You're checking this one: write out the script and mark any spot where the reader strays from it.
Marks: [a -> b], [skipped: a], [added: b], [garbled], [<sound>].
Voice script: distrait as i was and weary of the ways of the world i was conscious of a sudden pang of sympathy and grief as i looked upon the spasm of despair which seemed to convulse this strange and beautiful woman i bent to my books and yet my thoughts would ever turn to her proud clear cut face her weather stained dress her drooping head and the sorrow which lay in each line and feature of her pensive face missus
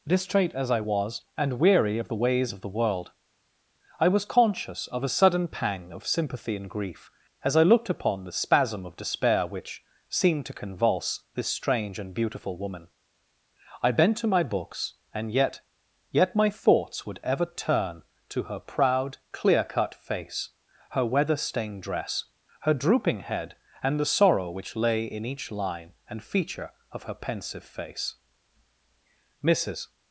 distrait as i was and weary of the ways of the world i was conscious of a sudden pang of sympathy and grief as i looked upon the spasm of despair which seemed to convulse this strange and beautiful woman i bent to my books and yet [added: yet] my thoughts would ever turn to her proud clear cut face her weather stained dress her drooping head and the sorrow which lay in each line and feature of her pensive face missus